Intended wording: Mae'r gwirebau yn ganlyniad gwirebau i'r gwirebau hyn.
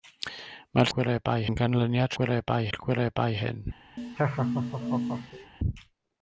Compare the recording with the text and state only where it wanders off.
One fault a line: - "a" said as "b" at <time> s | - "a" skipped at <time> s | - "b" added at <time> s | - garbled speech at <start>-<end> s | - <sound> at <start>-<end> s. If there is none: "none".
- laugh at 4.0-5.5 s